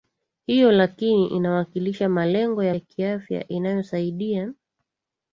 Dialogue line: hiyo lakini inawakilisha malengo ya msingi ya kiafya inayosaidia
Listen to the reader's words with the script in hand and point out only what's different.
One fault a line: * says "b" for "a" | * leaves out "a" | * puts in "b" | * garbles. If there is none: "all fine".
* leaves out "msingi"